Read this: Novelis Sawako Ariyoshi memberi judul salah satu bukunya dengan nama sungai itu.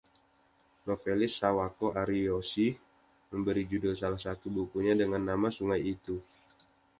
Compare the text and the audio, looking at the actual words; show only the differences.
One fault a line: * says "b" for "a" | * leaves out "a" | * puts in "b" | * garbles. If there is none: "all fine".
all fine